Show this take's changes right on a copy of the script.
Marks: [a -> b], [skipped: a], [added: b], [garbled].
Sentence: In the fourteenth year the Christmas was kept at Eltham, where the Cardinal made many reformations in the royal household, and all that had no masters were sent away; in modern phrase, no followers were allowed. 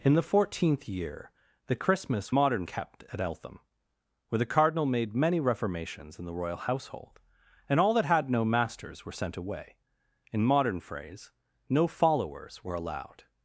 In the fourteenth year the Christmas [was -> modern] kept at Eltham, where the Cardinal made many reformations in the royal household, and all that had no masters were sent away; in modern phrase, no followers were allowed.